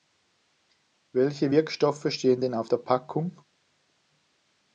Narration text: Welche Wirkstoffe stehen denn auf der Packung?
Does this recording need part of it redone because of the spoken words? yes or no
no